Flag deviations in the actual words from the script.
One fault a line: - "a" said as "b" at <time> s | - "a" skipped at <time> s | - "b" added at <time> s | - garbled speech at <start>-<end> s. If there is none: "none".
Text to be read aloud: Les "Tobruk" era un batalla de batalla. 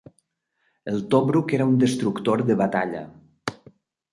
- "Les" said as "El" at 0.9 s
- "batalla" said as "destructor" at 1.8 s